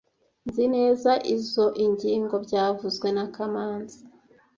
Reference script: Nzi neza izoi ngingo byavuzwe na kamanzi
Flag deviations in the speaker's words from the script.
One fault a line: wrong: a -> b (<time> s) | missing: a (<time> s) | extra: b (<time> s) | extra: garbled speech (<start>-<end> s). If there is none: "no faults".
no faults